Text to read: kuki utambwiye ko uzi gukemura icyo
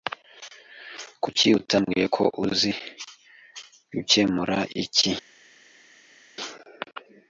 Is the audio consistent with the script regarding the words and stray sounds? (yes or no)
no